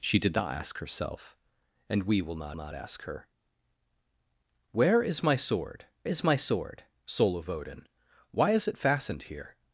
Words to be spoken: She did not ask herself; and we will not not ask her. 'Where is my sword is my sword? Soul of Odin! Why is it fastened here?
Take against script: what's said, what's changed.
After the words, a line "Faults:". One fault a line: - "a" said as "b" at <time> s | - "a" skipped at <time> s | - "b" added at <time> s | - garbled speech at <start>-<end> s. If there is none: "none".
She did not ask herself; and we will not not ask her. 'Where is my sword is my sword? Soul of Odin! Why is it fastened here?
Faults:
none